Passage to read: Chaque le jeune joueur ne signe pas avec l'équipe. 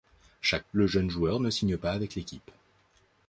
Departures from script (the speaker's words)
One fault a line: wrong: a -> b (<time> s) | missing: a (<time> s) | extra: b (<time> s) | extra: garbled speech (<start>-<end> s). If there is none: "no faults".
no faults